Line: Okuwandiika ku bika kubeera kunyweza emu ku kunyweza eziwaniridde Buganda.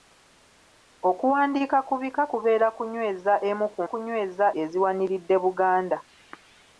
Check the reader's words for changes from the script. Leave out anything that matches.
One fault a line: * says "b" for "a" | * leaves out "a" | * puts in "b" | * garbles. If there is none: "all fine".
all fine